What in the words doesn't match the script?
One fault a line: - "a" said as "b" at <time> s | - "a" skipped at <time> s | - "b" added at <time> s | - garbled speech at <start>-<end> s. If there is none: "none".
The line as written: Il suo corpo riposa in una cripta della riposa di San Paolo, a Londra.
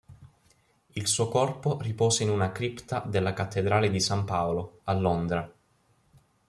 - "riposa" said as "cattedrale" at 3.3 s